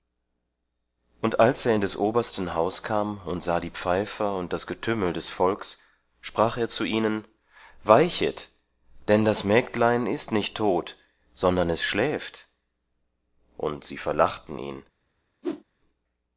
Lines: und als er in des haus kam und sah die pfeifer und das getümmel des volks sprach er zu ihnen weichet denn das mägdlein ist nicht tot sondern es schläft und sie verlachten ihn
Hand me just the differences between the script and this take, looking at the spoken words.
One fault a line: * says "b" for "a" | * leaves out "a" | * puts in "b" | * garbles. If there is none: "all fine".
* puts in "obersten"